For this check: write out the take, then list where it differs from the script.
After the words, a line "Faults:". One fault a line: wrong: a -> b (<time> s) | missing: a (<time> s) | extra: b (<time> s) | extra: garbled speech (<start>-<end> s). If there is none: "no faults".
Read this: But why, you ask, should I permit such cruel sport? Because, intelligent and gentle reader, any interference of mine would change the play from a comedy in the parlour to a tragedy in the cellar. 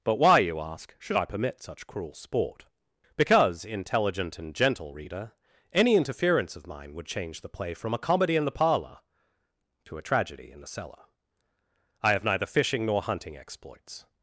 But why, you ask, should I permit such cruel sport? Because, intelligent and gentle reader, any interference of mine would change the play from a comedy in the parlour to a tragedy in the cellar. I have neither fishing nor hunting exploits
Faults:
extra: I have neither fishing nor hunting exploits (12.0 s)